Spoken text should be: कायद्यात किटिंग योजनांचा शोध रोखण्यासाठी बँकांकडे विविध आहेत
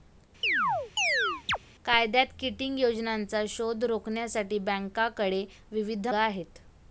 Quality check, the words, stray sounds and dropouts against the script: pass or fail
fail